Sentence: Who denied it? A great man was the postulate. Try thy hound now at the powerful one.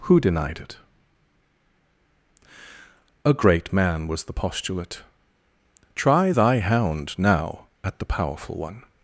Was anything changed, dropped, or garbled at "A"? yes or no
no